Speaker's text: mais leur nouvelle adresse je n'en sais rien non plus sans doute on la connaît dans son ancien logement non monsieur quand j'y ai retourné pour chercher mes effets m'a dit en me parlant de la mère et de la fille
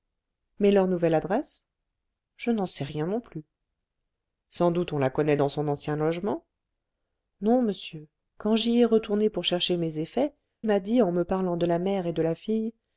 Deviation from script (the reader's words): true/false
false